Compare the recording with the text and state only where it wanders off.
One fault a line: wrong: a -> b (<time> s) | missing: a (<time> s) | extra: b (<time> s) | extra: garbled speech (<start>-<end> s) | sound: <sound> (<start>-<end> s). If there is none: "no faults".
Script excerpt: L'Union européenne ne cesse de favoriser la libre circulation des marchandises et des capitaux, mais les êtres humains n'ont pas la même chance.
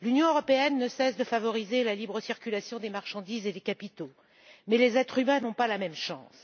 no faults